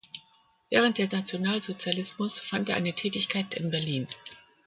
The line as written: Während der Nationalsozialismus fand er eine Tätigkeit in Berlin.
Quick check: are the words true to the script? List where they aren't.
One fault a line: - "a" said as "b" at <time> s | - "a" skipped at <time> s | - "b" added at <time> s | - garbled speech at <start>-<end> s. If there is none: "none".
none